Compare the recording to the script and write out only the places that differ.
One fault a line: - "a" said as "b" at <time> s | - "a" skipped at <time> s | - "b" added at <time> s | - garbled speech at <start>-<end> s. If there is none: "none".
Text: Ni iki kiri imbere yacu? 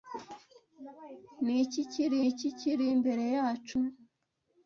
- "iki kiri" added at 2.3 s